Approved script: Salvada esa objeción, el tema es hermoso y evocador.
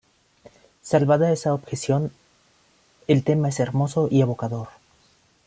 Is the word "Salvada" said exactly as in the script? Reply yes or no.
yes